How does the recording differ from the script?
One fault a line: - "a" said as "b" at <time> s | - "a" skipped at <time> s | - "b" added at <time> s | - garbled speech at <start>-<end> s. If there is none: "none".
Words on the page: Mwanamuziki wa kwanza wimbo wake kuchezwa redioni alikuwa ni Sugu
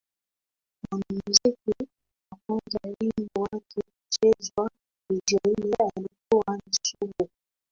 none